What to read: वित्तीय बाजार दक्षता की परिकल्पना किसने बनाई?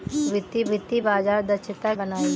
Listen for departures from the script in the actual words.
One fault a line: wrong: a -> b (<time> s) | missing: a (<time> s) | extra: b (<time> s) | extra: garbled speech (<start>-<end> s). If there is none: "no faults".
extra: वित्तीय (0.7 s)
missing: की परिकल्पना किसने (1.9 s)